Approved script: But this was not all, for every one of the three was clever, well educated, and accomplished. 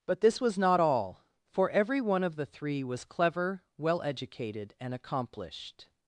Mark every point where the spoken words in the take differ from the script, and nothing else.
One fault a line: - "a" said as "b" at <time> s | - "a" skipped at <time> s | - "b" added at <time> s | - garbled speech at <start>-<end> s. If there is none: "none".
none